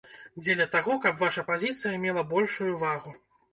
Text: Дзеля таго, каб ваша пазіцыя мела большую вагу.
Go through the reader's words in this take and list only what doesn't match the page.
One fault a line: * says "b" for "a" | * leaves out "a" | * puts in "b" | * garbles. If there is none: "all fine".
all fine